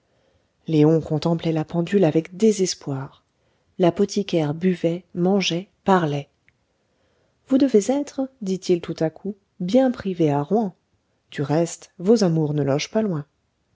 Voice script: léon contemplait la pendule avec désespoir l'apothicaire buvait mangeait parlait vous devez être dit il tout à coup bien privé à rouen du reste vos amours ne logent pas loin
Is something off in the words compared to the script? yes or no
no